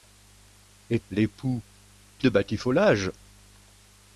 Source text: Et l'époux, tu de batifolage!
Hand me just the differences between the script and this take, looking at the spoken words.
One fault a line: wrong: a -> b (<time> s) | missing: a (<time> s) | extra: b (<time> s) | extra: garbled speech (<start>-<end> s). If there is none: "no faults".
no faults